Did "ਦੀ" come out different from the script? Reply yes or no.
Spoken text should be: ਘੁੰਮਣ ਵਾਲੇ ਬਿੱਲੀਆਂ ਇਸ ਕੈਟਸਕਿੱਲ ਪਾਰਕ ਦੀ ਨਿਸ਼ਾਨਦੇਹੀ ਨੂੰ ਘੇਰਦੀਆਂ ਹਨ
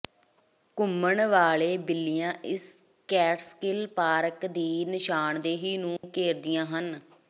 no